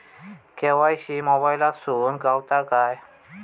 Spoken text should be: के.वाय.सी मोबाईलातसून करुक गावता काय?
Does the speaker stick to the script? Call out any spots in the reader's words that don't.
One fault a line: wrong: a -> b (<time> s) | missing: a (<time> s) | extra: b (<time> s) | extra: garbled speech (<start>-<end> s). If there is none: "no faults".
missing: करुक (2.2 s)